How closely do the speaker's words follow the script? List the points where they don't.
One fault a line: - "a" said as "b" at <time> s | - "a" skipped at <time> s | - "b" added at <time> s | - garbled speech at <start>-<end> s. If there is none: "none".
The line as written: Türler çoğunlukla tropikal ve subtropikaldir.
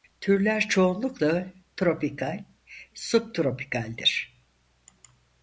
- "ve" skipped at 2.4 s